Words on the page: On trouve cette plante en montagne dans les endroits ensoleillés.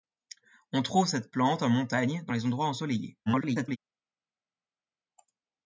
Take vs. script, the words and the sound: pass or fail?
fail